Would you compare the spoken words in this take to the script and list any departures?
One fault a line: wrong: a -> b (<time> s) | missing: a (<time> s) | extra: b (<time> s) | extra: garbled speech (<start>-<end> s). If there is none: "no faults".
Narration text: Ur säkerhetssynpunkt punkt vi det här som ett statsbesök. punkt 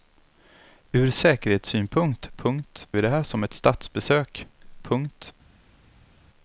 no faults